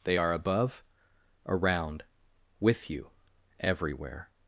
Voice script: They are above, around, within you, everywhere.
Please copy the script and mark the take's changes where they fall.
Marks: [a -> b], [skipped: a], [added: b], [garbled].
They are above, around, [within -> with] you, everywhere.